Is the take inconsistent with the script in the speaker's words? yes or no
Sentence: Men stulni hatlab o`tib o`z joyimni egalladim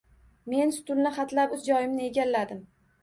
yes